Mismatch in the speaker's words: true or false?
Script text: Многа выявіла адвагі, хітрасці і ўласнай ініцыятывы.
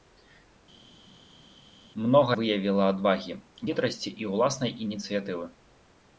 false